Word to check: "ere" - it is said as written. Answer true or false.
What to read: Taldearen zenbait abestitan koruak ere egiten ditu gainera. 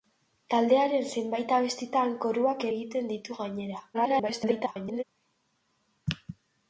false